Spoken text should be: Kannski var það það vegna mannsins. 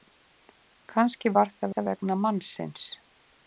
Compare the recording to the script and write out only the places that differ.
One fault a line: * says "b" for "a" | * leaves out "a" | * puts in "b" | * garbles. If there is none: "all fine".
all fine